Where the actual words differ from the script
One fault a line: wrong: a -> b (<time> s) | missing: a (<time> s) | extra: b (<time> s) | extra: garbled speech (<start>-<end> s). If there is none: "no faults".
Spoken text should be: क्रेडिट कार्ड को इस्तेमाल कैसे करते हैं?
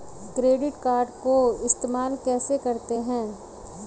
no faults